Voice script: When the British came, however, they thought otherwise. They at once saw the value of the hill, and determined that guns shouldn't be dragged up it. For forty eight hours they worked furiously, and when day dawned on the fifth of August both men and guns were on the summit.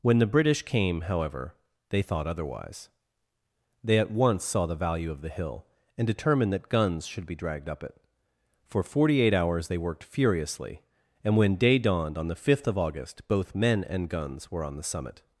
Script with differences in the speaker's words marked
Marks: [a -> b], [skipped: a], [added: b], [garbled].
When the British came, however, they thought otherwise. They at once saw the value of the hill, and determined that guns [shouldn't -> should] be dragged up it. For forty eight hours they worked furiously, and when day dawned on the fifth of August both men and guns were on the summit.